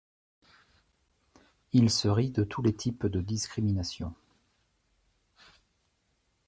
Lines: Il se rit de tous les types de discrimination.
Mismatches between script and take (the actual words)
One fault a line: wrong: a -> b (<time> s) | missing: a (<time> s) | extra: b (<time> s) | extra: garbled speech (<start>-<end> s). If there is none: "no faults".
no faults